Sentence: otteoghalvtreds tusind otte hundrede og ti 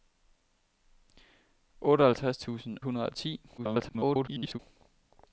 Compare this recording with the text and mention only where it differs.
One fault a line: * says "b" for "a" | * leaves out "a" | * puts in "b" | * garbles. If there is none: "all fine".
* leaves out "otte"
* garbles